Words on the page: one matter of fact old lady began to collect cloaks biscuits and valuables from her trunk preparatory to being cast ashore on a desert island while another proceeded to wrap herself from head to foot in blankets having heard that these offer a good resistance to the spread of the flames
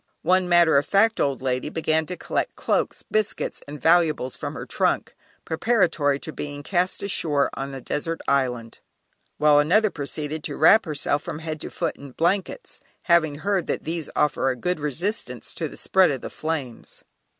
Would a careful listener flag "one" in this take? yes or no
no